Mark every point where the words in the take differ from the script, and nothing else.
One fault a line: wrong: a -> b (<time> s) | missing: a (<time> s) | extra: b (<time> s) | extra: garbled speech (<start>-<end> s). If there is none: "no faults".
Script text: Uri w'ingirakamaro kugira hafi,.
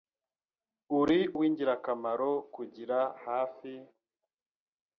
no faults